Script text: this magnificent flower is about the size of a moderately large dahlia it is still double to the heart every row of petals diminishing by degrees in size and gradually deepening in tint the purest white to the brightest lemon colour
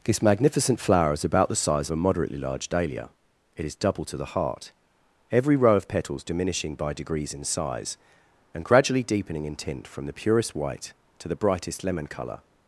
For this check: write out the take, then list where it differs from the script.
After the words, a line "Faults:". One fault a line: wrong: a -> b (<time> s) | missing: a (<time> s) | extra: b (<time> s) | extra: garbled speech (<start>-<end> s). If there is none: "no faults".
this magnificent flower is about the size of a moderately large dahlia it is double to the heart every row of petals diminishing by degrees in size and gradually deepening in tint from the purest white to the brightest lemon colour
Faults:
missing: still (3.7 s)
extra: from (9.9 s)